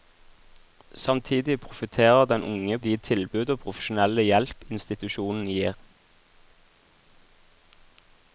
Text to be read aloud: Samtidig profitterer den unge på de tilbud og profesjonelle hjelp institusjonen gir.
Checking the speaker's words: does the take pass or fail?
fail